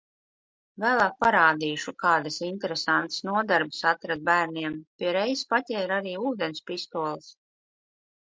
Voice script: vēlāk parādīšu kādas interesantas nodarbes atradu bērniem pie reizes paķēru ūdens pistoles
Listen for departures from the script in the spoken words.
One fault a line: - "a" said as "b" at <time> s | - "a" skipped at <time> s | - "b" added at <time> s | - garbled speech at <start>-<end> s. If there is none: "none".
- "arī" added at 6.0 s